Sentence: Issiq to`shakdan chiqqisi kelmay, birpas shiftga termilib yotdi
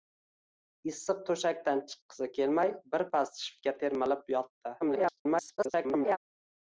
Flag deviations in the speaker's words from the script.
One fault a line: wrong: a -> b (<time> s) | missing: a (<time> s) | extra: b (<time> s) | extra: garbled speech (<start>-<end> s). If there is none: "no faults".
extra: garbled speech (4.8-6.2 s)